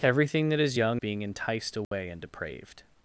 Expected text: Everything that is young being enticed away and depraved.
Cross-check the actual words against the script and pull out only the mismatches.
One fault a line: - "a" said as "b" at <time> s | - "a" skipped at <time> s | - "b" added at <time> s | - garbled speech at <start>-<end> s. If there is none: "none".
none